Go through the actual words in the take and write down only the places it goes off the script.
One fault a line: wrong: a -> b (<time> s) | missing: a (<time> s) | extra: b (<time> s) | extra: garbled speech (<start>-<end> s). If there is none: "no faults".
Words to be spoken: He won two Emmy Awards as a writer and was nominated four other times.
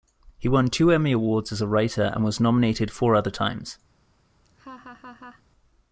no faults